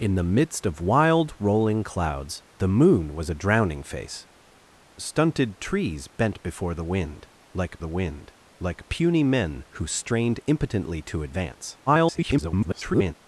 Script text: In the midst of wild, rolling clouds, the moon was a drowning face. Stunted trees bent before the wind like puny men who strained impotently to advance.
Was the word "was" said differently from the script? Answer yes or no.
no